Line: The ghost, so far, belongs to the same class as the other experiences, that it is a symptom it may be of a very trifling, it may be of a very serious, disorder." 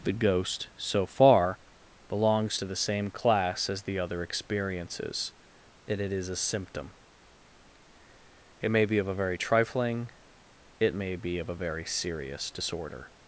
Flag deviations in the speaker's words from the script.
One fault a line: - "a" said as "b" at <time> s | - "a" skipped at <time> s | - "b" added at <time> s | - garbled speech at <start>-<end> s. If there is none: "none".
- "that" said as "and" at 5.9 s